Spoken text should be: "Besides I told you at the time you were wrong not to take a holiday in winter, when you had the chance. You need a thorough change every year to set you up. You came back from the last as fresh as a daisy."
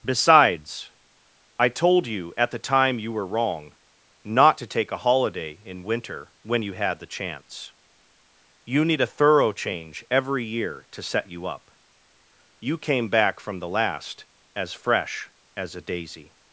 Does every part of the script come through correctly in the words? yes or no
yes